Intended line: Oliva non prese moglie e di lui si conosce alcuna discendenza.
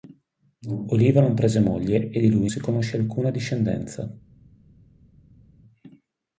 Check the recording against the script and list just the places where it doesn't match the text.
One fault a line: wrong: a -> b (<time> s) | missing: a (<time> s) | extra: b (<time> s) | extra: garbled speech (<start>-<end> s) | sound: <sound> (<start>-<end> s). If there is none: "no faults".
no faults